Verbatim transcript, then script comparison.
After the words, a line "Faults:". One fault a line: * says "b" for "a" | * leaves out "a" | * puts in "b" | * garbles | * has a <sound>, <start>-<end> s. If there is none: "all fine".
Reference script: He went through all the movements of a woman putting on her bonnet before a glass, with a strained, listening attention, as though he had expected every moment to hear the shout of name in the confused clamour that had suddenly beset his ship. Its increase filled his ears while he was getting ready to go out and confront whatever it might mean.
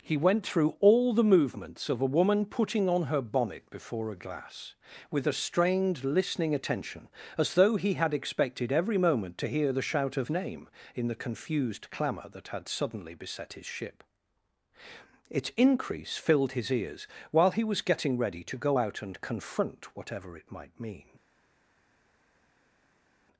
He went through all the movements of a woman putting on her bonnet before a glass, with a strained, listening attention, as though he had expected every moment to hear the shout of name in the confused clamour that had suddenly beset his ship. Its increase filled his ears while he was getting ready to go out and confront whatever it might mean.
Faults:
all fine